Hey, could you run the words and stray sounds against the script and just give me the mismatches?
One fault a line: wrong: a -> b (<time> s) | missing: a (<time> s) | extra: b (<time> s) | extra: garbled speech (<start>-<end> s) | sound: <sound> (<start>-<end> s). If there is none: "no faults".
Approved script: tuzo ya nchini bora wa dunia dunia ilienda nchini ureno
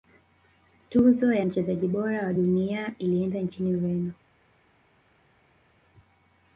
wrong: nchini -> mchezaji (1.4 s)
missing: dunia (2.9 s)